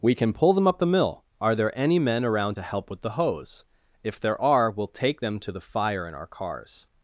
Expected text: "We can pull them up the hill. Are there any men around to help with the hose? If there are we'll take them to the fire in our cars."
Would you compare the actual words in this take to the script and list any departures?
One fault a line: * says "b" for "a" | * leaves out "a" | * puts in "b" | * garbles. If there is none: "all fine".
* says "mill" for "hill"